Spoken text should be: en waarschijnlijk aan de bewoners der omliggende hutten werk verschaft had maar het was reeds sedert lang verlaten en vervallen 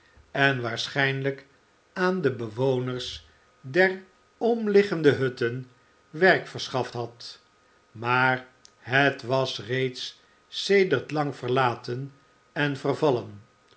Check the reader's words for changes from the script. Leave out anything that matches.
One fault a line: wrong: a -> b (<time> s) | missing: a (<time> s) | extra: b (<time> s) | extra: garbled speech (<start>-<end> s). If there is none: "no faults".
no faults